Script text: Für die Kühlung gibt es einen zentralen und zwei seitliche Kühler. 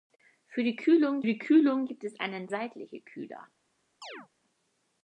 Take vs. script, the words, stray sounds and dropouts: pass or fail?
fail